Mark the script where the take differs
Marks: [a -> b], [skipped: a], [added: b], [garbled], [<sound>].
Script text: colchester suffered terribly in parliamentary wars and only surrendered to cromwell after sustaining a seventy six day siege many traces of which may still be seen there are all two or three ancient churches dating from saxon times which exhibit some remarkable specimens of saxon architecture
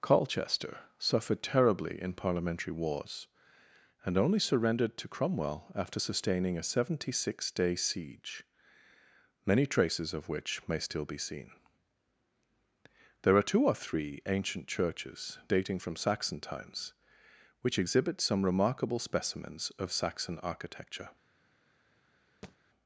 colchester suffered terribly in parliamentary wars and only surrendered to cromwell after sustaining a seventy six day siege many traces of which may still be seen there are [skipped: all] two or three ancient churches dating from saxon times which exhibit some remarkable specimens of saxon architecture [thud]